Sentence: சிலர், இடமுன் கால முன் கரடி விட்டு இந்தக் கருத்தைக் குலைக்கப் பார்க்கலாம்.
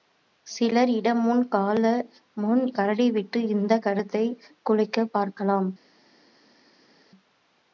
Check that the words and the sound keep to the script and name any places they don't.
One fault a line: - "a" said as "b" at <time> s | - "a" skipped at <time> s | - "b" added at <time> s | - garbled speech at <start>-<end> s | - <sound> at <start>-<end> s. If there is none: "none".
none